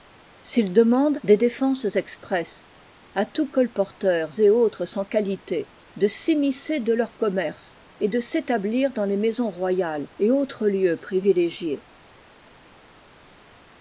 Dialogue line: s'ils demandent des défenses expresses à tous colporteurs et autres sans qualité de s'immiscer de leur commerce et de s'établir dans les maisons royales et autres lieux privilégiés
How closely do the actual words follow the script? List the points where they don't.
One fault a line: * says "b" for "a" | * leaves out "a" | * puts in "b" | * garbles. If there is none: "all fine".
all fine